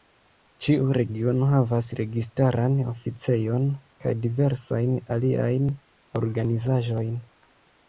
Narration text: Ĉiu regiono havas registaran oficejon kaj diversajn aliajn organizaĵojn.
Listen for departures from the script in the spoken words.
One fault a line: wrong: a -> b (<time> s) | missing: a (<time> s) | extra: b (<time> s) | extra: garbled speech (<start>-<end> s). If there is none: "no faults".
no faults